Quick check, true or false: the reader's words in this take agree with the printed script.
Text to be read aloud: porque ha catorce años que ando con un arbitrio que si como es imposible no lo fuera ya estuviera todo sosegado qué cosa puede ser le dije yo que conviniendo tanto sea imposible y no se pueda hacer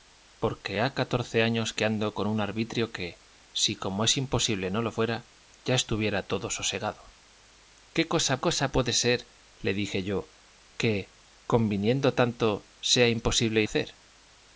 false